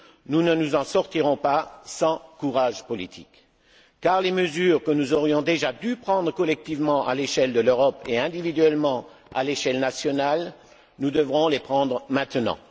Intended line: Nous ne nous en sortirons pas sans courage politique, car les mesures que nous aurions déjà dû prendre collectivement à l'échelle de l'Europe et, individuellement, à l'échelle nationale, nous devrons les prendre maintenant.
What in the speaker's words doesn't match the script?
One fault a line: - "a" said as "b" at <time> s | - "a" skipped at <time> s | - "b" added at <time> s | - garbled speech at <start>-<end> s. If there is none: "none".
none